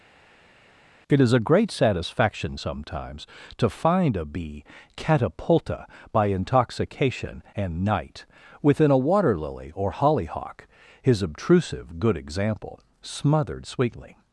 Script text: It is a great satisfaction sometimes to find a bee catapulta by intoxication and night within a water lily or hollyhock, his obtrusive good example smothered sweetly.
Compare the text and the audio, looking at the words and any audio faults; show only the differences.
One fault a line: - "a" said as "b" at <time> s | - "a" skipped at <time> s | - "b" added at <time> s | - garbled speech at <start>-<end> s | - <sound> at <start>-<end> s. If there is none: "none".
none